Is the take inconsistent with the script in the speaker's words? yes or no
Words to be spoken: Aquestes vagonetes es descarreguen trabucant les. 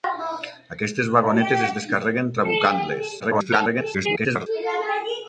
yes